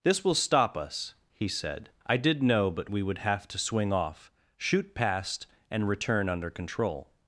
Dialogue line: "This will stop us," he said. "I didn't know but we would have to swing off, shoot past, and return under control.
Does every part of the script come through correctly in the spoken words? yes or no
no